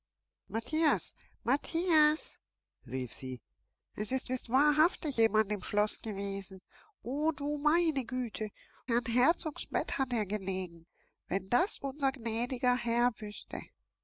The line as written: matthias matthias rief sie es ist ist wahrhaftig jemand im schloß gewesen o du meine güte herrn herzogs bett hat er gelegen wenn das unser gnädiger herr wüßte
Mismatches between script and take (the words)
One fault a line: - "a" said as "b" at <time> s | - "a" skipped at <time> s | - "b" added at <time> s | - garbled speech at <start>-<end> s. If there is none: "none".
none